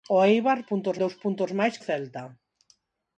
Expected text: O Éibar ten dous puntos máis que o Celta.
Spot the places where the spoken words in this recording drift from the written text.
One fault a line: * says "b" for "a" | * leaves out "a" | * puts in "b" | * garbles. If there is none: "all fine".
* says "puntos" for "ten"
* leaves out "que"